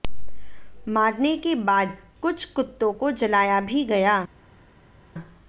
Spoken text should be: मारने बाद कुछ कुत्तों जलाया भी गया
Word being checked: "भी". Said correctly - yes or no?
yes